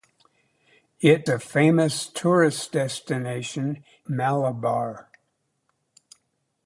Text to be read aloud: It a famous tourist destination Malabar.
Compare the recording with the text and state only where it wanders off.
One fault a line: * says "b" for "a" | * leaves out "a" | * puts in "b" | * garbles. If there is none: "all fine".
all fine